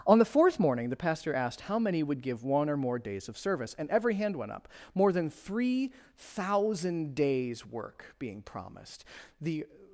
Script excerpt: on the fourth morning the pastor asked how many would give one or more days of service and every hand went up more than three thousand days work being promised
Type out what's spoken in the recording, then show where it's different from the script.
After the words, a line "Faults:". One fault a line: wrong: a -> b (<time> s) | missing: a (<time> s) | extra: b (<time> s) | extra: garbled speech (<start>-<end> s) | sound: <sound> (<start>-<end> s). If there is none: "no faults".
on the fourth morning the pastor asked how many would give one or more days of service and every hand went up more than three thousand days work being promised the
Faults:
extra: the (9.4 s)